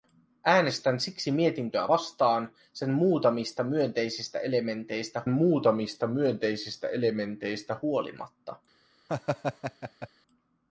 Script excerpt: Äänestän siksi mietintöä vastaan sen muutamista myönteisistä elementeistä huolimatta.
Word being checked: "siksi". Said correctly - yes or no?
yes